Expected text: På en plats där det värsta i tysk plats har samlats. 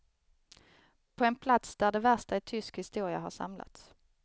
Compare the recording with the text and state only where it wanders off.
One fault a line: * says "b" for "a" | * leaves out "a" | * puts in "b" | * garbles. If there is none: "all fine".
* says "historia" for "plats"